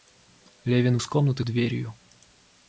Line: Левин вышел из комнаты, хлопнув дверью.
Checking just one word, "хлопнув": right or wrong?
wrong